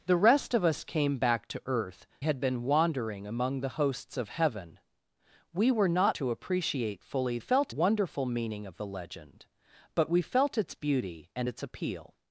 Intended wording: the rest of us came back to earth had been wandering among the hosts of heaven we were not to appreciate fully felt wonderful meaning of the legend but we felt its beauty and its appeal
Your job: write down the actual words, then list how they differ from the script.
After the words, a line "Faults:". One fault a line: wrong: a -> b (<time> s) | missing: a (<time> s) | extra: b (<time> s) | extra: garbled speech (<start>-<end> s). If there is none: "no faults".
the rest of us came back to earth had been wandering among the hosts of heaven we were not to appreciate fully felt wonderful meaning of the legend but we felt its beauty and its appeal
Faults:
no faults